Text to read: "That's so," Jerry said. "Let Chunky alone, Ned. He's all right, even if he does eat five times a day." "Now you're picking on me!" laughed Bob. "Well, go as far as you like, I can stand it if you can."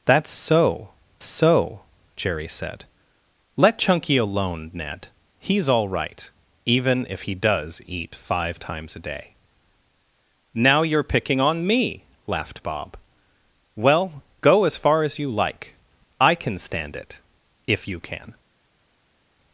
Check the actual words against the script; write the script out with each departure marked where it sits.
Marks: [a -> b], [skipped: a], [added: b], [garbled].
"That's so," [added: so] Jerry said. "Let Chunky alone, Ned. He's all right, even if he does eat five times a day." "Now you're picking on me!" laughed Bob. "Well, go as far as you like, I can stand it if you can."